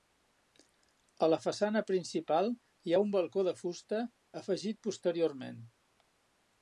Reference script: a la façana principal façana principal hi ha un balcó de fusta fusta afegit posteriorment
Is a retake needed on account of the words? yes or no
yes